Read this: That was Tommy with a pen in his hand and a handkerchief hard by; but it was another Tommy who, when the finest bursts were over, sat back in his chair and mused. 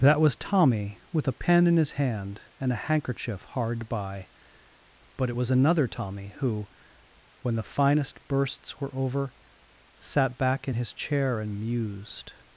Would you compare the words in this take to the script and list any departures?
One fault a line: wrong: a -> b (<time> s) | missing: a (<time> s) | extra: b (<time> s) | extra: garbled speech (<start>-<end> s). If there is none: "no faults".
no faults